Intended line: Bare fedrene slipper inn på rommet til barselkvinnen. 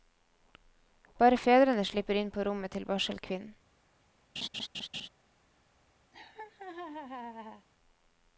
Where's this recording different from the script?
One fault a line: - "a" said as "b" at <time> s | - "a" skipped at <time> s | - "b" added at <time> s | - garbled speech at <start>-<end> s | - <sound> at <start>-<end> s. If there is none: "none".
- laugh at 4.4-5.1 s
- laugh at 6.1-7.7 s